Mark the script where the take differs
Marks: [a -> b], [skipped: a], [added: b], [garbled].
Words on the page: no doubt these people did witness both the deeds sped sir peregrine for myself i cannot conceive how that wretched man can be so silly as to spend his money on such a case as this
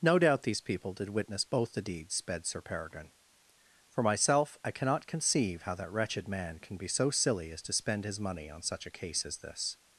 no doubt these people did witness both the deeds sped sir peregrine for myself i cannot conceive how that wretched man can be so silly as to spend his money on such a case as this